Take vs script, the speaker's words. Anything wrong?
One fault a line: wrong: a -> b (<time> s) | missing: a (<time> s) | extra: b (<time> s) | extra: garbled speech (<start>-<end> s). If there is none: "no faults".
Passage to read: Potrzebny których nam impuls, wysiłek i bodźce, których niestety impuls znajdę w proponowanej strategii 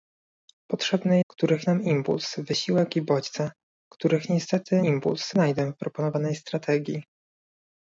no faults